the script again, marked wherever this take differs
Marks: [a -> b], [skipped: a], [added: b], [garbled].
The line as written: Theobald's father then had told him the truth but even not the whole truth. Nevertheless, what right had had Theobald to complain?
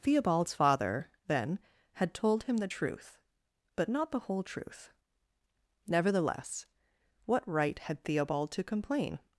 Theobald's father then had told him the truth but [skipped: even] not the whole truth. Nevertheless, what right had [skipped: had] Theobald to complain?